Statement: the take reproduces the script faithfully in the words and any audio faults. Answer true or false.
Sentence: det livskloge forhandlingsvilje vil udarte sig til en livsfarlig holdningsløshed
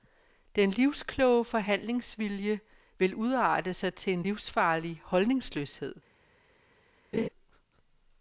false